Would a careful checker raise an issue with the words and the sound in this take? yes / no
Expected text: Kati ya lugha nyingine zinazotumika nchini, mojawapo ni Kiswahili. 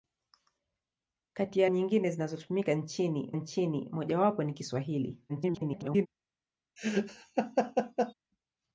yes